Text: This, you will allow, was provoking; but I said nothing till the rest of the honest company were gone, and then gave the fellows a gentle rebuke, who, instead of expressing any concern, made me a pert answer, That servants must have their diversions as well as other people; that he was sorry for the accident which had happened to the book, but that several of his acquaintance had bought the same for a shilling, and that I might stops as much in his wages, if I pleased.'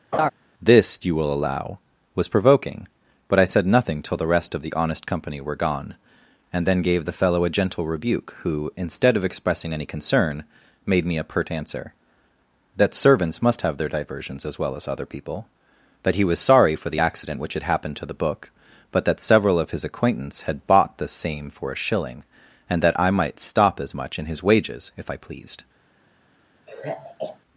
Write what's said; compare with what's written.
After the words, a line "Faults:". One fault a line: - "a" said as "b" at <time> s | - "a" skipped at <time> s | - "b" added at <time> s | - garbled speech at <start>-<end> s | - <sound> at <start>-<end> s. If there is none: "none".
This, you will allow, was provoking; but I said nothing till the rest of the honest company were gone, and then gave the fellow a gentle rebuke, who, instead of expressing any concern, made me a pert answer, That servants must have their diversions as well as other people; that he was sorry for the accident which had happened to the book, but that several of his acquaintance had bought the same for a shilling, and that I might stop as much in his wages, if I pleased.'
Faults:
- laugh at 0.1-0.3 s
- "fellows" said as "fellow" at 7.1 s
- "stops" said as "stop" at 23.4 s
- sigh at 26.7-27.4 s